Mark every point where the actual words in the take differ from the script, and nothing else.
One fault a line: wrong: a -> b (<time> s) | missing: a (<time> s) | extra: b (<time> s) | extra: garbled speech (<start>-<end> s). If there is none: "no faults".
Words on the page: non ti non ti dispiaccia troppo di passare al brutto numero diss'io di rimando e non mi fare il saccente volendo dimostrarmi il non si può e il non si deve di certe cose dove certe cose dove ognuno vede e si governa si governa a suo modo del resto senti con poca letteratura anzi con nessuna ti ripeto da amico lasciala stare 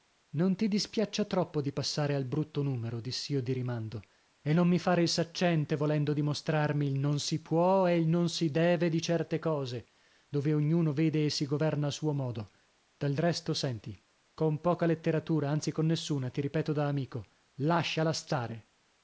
missing: non ti (0.7 s)
missing: certe cose dove (10.5 s)
missing: si governa (11.8 s)